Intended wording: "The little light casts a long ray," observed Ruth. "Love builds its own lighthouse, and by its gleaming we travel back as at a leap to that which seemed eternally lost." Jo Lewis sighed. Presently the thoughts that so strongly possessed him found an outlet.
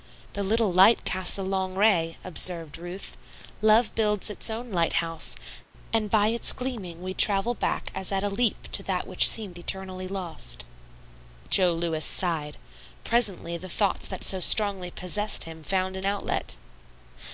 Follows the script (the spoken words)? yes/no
yes